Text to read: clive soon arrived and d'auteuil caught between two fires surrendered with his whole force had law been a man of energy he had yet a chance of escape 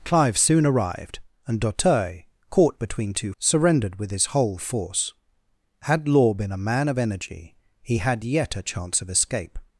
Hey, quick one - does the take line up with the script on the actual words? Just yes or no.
no